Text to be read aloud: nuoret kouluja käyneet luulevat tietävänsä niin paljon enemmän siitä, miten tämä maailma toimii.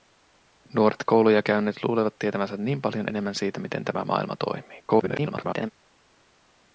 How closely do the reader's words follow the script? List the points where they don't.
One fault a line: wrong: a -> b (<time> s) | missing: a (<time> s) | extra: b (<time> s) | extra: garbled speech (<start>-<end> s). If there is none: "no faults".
extra: garbled speech (4.9-5.7 s)